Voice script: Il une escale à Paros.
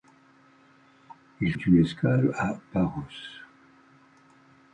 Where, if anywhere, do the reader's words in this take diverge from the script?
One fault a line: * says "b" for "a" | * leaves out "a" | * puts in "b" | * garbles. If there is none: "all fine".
all fine